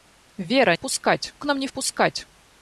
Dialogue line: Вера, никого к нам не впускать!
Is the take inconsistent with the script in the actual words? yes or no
yes